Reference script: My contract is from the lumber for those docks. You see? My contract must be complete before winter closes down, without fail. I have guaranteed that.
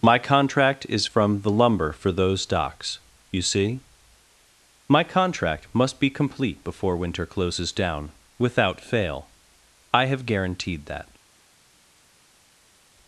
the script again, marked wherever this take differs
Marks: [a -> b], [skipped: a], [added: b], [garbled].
My contract is from the lumber for those docks. You see? My contract must be complete before winter closes down, without fail. I have guaranteed that.